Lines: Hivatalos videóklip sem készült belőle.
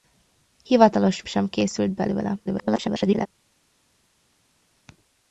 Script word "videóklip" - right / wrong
wrong